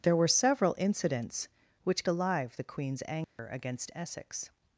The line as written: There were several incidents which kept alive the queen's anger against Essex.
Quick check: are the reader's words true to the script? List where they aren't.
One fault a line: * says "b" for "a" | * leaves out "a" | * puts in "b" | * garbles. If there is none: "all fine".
* leaves out "kept"